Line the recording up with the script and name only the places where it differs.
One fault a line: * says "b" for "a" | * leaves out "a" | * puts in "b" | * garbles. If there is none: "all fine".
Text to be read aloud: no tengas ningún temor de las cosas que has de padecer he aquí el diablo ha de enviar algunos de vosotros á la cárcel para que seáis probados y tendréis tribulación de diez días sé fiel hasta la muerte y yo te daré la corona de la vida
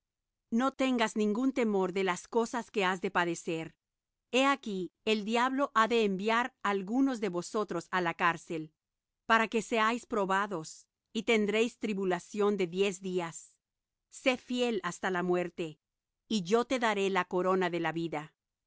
all fine